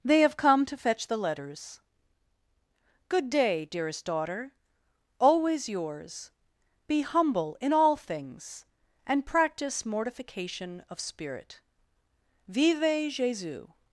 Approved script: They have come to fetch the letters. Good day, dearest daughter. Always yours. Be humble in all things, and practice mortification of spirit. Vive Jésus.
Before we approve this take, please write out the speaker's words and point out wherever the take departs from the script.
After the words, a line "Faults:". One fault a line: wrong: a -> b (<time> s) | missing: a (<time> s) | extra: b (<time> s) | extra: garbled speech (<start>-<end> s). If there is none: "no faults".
They have come to fetch the letters. Good day, dearest daughter. Always yours. Be humble in all things, and practice mortification of spirit. Vive Jésus.
Faults:
no faults